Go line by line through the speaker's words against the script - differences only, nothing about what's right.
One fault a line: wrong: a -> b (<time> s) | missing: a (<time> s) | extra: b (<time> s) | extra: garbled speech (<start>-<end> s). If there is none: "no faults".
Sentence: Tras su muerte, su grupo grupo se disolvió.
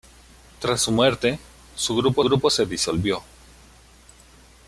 no faults